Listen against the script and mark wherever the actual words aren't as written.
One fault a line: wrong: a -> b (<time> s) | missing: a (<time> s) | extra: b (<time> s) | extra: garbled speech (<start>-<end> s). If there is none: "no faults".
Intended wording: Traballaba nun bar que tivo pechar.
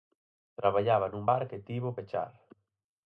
no faults